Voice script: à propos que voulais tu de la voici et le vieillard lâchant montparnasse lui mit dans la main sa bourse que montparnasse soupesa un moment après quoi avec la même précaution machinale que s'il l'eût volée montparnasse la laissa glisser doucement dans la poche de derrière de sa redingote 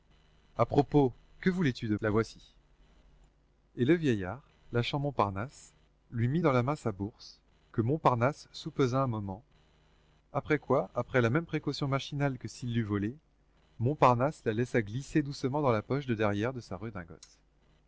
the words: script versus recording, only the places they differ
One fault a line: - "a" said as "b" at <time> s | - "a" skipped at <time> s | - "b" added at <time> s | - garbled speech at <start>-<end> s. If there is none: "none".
none